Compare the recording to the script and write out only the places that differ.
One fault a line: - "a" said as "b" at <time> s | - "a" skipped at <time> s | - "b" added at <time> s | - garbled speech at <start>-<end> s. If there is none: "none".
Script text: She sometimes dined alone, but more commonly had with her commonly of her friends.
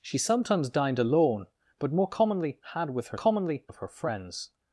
none